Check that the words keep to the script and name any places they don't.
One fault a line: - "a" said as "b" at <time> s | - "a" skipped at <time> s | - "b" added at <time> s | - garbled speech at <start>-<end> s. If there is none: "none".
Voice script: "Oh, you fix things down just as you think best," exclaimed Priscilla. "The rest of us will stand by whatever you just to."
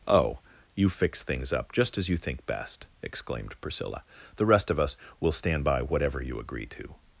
- "down" said as "up" at 1.5 s
- "just" said as "agree" at 6.4 s